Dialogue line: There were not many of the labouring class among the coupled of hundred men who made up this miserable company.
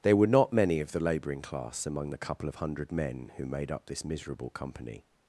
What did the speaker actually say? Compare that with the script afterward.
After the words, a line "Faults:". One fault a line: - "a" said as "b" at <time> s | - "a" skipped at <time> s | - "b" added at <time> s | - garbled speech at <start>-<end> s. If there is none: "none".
There were not many of the labouring class among the couple of hundred men who made up this miserable company.
Faults:
- "coupled" said as "couple" at 2.2 s